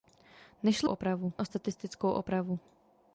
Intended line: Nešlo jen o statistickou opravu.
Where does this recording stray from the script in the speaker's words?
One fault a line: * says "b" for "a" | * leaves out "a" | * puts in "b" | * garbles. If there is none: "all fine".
* says "opravu" for "jen"